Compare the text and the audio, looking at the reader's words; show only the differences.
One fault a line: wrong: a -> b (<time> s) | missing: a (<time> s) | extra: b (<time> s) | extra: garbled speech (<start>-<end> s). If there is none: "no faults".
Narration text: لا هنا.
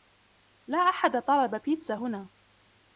extra: أحد طلب بيتزا (0.8 s)